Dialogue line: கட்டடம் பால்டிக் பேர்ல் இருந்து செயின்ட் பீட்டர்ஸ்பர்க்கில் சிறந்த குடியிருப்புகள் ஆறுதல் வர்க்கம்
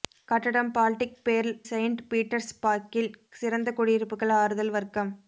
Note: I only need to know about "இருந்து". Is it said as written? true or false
false